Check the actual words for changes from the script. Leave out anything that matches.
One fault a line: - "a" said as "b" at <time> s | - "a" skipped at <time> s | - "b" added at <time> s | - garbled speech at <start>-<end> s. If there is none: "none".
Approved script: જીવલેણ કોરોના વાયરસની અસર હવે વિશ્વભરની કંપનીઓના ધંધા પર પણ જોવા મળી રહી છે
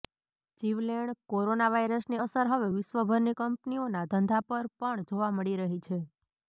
none